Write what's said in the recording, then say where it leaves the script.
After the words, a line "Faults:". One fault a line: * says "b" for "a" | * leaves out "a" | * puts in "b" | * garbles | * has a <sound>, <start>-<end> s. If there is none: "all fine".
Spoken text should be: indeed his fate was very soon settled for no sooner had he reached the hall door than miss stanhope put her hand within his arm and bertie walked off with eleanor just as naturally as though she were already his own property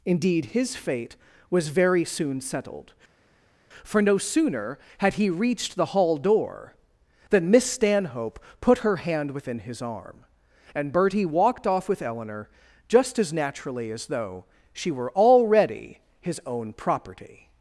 indeed his fate was very soon settled for no sooner had he reached the hall door than miss stanhope put her hand within his arm and bertie walked off with eleanor just as naturally as though she were already his own property
Faults:
all fine